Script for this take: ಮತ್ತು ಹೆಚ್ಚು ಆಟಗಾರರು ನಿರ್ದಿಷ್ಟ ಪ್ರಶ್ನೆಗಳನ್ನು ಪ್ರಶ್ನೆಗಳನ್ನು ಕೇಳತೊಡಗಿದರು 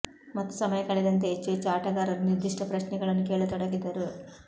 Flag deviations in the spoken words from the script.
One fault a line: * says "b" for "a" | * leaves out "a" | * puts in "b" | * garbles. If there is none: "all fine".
* puts in "ಸಮಯ ಕಳೆದಂತೆ"
* puts in "ಹೆಚ್ಚು"
* leaves out "ಪ್ರಶ್ನೆಗಳನ್ನು"